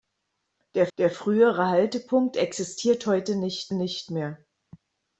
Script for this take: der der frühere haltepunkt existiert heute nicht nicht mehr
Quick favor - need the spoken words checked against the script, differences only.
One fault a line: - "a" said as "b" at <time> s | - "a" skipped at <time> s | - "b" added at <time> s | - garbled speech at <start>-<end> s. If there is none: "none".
none